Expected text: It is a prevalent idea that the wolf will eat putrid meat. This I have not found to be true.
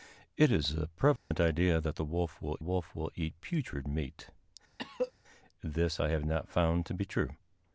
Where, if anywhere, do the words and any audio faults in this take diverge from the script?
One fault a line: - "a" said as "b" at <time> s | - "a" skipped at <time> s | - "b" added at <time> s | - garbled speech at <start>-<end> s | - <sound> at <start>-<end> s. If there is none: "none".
- dropout at 1.2-1.3 s
- "wolf will" added at 2.6 s
- cough at 4.8-5.1 s